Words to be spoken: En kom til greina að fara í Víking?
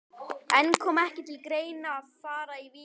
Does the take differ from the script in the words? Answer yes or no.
yes